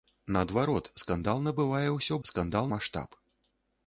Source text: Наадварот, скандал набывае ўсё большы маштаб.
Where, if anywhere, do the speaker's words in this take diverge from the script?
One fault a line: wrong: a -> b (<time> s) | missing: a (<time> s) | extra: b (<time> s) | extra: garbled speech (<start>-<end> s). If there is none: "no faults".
wrong: большы -> скандал (2.3 s)